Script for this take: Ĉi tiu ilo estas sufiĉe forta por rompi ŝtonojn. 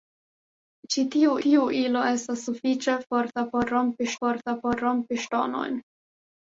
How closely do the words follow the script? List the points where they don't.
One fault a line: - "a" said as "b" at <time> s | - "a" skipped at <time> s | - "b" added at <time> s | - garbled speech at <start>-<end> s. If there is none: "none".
- "tiu" added at 1.5 s
- "forta por rompi" added at 4.2 s